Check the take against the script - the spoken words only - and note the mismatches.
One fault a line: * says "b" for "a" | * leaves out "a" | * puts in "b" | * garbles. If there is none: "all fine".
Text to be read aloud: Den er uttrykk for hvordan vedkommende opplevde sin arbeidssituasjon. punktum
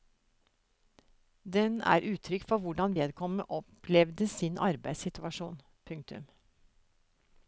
all fine